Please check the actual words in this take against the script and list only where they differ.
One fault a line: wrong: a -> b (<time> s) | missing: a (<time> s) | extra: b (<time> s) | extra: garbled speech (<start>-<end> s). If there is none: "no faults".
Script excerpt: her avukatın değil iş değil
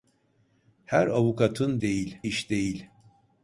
no faults